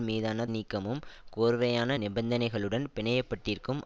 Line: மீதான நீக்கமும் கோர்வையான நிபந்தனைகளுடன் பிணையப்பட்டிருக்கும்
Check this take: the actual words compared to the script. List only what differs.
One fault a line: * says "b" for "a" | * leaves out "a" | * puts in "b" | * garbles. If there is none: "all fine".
all fine